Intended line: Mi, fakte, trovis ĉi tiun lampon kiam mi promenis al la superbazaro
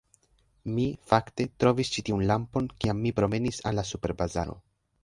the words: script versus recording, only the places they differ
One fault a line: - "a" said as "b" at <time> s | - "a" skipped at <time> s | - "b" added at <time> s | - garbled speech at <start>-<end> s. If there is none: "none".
none